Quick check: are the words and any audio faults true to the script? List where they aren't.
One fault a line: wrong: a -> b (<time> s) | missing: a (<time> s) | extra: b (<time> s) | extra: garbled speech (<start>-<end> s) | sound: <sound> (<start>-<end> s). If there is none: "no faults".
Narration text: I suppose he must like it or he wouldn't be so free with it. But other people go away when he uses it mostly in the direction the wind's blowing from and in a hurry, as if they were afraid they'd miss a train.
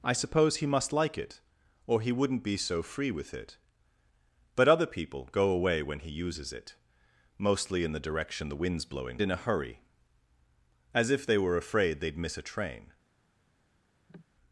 missing: from and (9.2 s)
sound: cough (14.1-14.2 s)